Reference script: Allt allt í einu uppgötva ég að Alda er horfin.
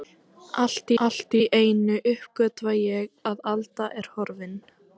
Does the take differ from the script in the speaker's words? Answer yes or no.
no